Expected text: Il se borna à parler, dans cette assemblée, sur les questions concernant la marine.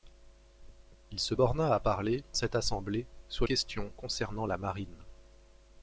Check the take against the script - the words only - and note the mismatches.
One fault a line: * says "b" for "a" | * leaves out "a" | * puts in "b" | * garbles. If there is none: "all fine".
* leaves out "dans"
* leaves out "les"